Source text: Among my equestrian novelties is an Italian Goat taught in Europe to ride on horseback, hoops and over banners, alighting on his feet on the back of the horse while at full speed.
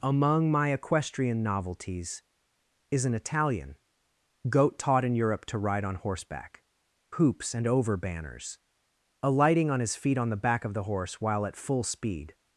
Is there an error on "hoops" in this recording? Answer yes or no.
no